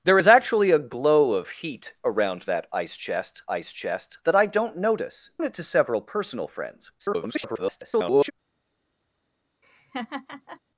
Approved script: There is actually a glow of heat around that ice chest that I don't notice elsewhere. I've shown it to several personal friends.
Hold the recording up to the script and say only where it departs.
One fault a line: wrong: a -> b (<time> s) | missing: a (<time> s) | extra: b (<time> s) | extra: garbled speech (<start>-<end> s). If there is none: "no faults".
extra: ice chest (3.5 s)
missing: elsewhere I've shown (5.3 s)
extra: garbled speech (7.0-8.3 s)